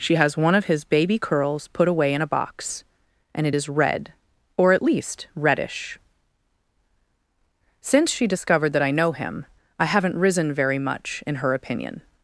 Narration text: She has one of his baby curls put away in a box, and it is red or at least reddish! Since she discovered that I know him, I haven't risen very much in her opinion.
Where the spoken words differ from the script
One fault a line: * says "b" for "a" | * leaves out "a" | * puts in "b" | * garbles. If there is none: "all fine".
all fine